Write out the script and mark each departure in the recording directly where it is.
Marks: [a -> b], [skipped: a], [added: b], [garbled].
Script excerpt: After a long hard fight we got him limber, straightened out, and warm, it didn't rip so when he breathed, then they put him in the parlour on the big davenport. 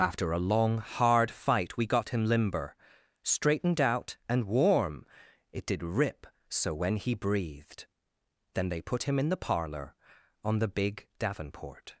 After a long hard fight we got him limber, straightened out, and warm, it [didn't -> did] rip so when he breathed, then they put him in the parlour on the big davenport.